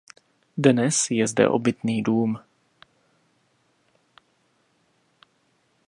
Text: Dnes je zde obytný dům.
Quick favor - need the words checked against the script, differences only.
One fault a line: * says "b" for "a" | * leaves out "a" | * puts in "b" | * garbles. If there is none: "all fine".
all fine